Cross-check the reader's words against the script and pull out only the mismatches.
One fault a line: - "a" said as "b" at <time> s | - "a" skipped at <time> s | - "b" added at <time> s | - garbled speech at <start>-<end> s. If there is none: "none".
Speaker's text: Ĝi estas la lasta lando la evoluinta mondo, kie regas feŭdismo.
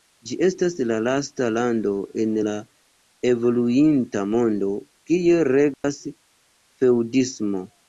- "en" added at 2.2 s